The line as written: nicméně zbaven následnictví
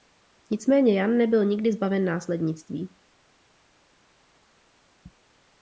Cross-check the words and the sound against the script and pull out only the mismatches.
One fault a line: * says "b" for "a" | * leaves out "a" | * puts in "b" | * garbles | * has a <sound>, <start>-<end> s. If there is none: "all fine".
* puts in "jan nebyl nikdy"